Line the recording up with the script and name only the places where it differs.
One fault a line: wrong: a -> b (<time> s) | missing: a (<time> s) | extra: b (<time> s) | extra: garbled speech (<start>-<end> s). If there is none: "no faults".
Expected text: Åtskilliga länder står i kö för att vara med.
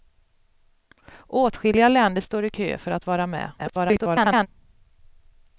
extra: garbled speech (3.6-4.5 s)